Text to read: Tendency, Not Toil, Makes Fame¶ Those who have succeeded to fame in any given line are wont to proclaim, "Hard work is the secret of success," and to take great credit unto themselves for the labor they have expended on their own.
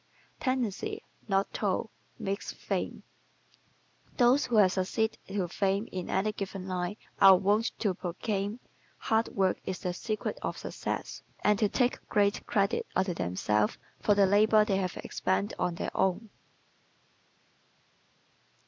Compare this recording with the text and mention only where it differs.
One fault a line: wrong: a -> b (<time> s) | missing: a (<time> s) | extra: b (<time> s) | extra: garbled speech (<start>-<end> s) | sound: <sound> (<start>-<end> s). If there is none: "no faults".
no faults